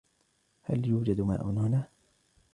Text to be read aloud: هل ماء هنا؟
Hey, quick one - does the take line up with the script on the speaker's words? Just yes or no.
no